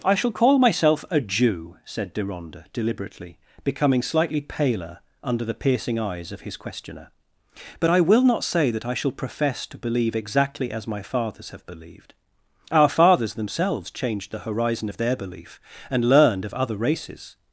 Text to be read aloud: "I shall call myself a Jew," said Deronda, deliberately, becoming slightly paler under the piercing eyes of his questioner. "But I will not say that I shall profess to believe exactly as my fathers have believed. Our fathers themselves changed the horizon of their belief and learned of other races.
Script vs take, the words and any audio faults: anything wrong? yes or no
no